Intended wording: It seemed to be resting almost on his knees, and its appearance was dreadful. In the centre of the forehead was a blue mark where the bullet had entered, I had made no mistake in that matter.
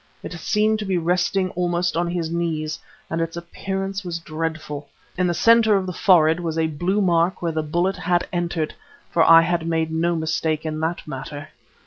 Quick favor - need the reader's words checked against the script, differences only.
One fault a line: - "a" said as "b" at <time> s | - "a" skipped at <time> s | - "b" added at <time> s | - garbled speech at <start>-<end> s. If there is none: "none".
- "for" added at 9.1 s